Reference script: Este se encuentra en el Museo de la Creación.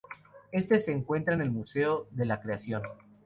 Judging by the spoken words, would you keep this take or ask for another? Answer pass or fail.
pass